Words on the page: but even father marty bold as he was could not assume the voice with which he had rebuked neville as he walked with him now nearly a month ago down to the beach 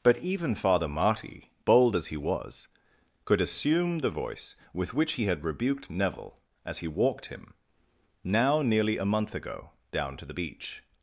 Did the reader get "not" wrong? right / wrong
wrong